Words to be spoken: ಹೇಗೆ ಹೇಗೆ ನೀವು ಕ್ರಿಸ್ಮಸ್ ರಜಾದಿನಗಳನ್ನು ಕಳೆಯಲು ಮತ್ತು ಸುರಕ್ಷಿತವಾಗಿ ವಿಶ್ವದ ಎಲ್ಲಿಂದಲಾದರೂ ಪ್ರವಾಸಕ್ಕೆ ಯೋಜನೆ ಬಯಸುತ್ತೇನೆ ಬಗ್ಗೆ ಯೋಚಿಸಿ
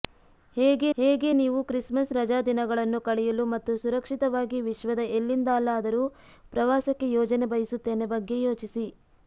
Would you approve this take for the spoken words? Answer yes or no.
yes